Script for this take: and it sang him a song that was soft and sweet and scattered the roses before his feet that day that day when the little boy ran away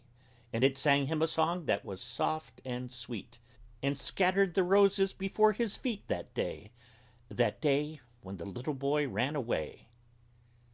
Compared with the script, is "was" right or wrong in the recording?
right